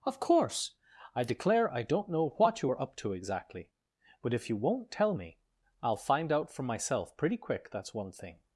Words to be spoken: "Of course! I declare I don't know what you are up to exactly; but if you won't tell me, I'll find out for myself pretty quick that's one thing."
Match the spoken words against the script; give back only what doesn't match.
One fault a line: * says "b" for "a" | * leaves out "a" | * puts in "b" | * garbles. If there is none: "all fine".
all fine